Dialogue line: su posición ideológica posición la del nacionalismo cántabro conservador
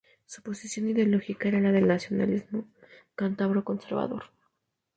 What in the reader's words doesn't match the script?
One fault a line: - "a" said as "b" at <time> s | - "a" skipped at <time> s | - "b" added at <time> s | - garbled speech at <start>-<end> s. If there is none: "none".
- "posición" said as "era" at 1.5 s